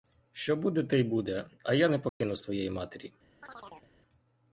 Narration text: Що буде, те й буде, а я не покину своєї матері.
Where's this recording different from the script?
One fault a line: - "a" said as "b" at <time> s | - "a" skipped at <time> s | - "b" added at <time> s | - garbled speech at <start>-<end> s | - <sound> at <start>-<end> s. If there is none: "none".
- dropout at 2.1-2.2 s
- chirp at 3.4-3.9 s